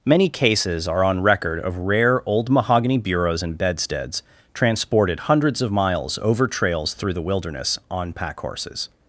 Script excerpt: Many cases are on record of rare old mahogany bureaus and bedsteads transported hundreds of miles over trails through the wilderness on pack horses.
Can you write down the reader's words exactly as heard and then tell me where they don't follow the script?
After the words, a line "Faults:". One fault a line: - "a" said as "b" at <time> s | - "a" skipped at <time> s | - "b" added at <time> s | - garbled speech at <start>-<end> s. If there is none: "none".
Many cases are on record of rare old mahogany bureaus and bedsteads transported hundreds of miles over trails through the wilderness on pack horses.
Faults:
none